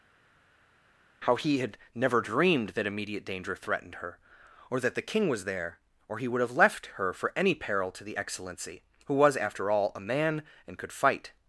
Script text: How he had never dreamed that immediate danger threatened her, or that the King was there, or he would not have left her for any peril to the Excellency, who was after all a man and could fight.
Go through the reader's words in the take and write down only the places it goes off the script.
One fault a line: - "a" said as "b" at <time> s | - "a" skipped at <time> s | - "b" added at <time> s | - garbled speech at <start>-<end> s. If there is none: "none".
- "not" skipped at 6.4 s